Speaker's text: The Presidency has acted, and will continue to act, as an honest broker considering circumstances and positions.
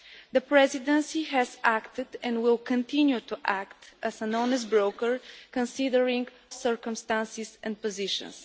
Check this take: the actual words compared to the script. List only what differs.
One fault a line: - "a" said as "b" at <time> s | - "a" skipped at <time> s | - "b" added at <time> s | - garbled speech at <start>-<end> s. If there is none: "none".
none